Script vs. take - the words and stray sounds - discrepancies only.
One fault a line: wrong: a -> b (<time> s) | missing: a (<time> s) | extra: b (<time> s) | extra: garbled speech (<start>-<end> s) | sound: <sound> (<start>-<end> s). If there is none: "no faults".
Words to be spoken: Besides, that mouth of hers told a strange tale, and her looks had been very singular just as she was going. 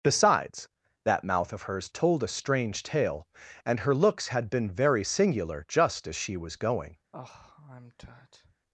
sound: sigh (7.1-8.6 s)